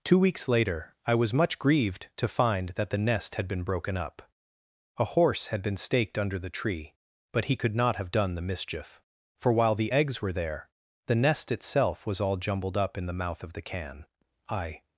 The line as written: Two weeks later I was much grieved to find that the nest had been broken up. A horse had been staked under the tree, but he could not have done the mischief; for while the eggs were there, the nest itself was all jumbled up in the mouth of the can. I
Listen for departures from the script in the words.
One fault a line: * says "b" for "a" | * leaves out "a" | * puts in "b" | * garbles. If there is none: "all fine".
all fine